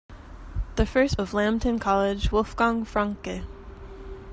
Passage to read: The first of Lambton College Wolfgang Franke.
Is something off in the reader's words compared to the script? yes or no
no